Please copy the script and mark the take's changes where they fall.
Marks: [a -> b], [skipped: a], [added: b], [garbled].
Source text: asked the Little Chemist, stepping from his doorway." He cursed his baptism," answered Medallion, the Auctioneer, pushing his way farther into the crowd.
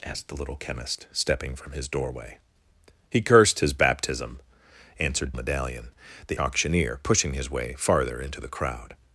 asked the Little Chemist, stepping from his doorway." He cursed his baptism," answered Medallion, the Auctioneer, pushing his way farther into the crowd.